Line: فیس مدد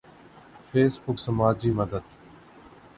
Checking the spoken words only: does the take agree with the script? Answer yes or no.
no